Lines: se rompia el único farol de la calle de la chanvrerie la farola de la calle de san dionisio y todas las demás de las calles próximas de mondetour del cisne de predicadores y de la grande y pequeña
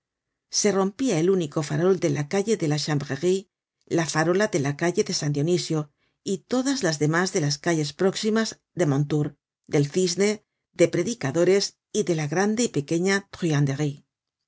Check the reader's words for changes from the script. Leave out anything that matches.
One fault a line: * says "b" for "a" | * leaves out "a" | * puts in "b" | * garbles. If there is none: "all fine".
all fine